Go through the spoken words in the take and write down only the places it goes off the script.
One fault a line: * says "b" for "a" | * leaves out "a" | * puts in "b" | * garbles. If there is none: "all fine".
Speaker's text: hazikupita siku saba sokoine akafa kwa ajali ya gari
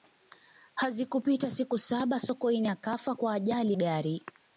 * leaves out "ya"